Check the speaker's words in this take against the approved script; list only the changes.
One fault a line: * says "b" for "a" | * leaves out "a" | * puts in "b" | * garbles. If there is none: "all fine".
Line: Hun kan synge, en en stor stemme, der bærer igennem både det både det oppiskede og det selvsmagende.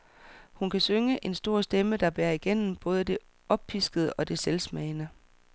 * leaves out "en"
* leaves out "både det"